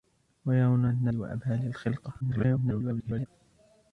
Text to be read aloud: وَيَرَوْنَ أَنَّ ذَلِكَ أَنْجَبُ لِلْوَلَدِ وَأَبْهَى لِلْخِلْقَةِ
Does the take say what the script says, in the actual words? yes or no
no